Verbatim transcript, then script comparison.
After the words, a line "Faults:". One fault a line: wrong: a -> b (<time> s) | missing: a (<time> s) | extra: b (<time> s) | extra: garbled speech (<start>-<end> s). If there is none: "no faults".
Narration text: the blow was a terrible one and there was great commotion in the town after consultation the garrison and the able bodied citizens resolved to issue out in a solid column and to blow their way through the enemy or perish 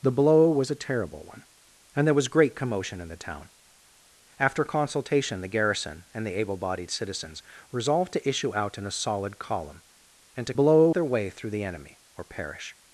the blow was a terrible one and there was great commotion in the town after consultation the garrison and the able bodied citizens resolved to issue out in a solid column and to blow their way through the enemy or perish
Faults:
no faults